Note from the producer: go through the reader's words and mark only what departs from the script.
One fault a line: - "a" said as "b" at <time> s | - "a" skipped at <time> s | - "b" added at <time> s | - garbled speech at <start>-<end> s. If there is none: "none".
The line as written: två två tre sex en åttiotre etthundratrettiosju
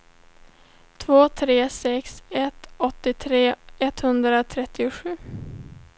- "två" skipped at 1.3 s
- "en" said as "ett" at 2.3 s